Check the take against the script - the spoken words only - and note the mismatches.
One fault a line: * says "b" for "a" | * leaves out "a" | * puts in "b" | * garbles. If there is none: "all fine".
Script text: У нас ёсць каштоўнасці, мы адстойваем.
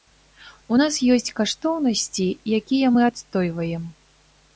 * puts in "якія"